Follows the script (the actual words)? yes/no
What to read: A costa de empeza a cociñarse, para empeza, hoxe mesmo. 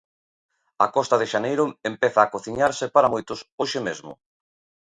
no